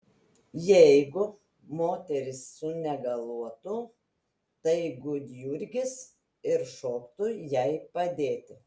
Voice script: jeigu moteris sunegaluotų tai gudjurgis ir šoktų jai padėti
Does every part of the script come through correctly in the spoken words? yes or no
yes